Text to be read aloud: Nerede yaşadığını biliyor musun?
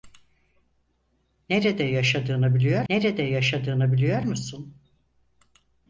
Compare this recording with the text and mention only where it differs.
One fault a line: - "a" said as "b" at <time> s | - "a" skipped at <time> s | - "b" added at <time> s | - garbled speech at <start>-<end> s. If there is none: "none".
- "nerede yaşadığını biliyor" added at 2.9 s